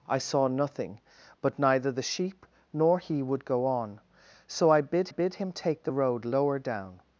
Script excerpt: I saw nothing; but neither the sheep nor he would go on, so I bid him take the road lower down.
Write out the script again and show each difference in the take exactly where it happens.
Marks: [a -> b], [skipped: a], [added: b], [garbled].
I saw nothing; but neither the sheep nor he would go on, so I bid [added: bid] him take the road lower down.